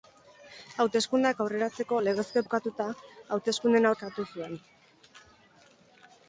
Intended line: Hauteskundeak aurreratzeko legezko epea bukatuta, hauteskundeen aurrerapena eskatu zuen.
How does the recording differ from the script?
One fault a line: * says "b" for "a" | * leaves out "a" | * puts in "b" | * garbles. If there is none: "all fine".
* leaves out "epea"
* leaves out "aurrerapena"